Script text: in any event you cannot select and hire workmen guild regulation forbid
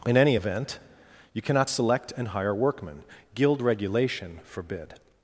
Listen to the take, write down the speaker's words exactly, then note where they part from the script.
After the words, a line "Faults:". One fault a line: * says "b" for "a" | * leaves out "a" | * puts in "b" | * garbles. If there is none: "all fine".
in any event you cannot select and hire workmen guild regulation forbid
Faults:
all fine